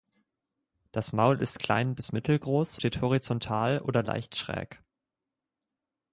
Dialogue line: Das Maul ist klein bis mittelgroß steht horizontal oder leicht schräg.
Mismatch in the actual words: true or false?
false